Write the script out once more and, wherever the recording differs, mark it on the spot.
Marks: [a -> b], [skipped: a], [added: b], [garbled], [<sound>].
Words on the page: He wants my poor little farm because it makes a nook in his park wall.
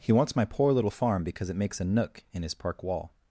He wants my poor little farm because it makes a nook in his park wall.